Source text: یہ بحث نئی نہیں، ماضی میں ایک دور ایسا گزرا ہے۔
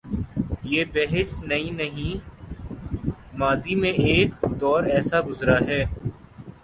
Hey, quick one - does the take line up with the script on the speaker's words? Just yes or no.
yes